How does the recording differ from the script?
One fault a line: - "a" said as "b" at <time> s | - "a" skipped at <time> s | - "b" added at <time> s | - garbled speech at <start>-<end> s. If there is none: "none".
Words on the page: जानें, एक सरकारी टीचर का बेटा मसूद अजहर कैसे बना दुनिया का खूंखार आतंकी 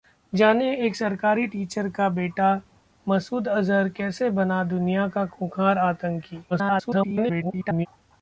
- garbled speech at 6.5-7.9 s